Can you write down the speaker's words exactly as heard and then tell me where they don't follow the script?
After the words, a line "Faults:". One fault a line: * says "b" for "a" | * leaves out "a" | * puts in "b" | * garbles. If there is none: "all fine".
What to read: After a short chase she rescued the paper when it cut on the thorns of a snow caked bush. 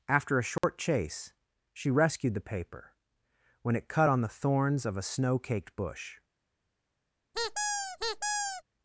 After a short chase she rescued the paper when it cut on the thorns of a snow caked bush.
Faults:
all fine